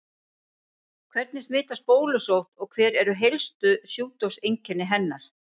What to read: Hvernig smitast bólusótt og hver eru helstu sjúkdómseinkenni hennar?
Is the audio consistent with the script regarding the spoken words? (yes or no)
yes